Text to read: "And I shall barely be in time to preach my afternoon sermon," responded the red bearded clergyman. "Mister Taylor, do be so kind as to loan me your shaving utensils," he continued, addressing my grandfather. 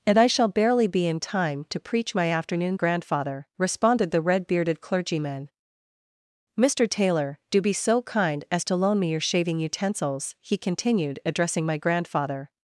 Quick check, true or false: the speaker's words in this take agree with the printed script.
false